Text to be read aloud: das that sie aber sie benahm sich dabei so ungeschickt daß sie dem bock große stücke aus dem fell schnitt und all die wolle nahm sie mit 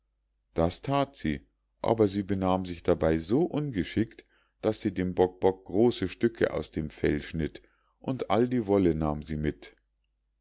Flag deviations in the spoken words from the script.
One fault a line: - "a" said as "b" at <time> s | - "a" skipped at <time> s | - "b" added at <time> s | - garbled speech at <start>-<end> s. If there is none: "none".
- "bock" added at 5.4 s